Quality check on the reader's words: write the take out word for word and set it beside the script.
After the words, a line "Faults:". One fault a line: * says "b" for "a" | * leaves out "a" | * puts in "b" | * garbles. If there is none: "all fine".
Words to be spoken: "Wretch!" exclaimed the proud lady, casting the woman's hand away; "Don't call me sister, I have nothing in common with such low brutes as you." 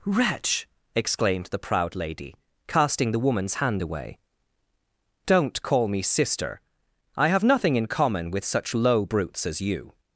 "Wretch!" exclaimed the proud lady, casting the woman's hand away; "Don't call me sister, I have nothing in common with such low brutes as you."
Faults:
all fine